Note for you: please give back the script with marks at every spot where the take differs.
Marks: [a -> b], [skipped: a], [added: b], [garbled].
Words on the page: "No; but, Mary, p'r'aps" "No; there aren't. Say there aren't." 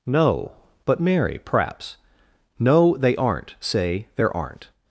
"No; but, Mary, p'r'aps" "No; [there -> they] aren't. Say there aren't."